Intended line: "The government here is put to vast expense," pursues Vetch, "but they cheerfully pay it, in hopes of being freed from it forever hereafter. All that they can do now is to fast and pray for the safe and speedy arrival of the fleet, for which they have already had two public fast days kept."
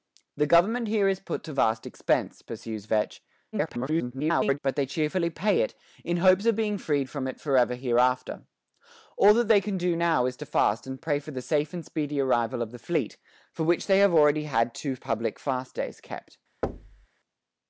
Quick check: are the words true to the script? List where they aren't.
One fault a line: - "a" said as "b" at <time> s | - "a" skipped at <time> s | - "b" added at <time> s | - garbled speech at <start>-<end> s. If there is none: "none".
- garbled speech at 3.5-4.6 s